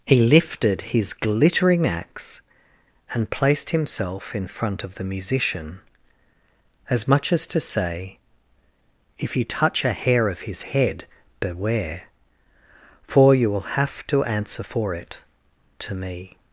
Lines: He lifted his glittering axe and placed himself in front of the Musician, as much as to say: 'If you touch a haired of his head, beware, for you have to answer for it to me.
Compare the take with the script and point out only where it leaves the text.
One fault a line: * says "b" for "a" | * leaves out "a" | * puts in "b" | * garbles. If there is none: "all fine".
* says "hair" for "haired"
* puts in "will"